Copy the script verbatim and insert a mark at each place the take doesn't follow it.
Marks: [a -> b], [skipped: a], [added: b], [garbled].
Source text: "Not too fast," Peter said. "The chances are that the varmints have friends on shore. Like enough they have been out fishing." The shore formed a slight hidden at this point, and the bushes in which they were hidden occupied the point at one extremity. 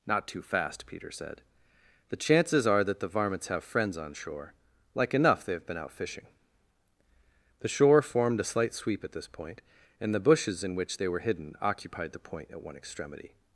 "Not too fast," Peter said. "The chances are that the varmints have friends on shore. Like enough they have been out fishing." The shore formed a slight [hidden -> sweep] at this point, and the bushes in which they were hidden occupied the point at one extremity.